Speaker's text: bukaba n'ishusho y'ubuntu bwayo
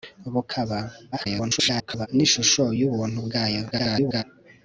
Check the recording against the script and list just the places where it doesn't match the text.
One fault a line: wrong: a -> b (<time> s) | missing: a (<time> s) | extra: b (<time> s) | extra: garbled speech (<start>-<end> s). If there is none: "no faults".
extra: garbled speech (1.1-2.1 s)
extra: garbled speech (3.7-4.2 s)